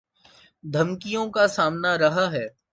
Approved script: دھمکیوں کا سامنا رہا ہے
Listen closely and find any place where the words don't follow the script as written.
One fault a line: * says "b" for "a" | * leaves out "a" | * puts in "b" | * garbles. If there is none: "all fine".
all fine